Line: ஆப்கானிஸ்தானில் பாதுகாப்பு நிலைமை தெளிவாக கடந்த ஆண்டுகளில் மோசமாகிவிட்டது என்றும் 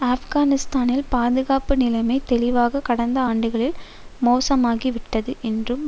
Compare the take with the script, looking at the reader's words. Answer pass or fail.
pass